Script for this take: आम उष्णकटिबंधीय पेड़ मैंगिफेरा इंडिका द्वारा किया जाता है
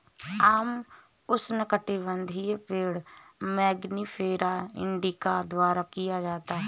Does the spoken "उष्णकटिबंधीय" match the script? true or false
true